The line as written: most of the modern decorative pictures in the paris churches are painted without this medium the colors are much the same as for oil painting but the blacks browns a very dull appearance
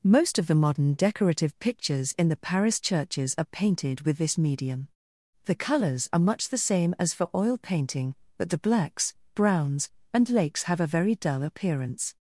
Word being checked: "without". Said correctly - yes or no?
no